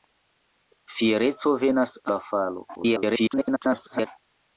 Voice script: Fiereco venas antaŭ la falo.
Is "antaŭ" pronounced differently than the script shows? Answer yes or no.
yes